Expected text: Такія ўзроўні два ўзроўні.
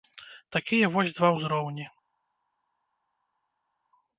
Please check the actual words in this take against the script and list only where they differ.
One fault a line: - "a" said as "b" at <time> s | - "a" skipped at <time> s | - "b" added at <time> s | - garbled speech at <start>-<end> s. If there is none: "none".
- "ўзроўні" said as "вось" at 1.0 s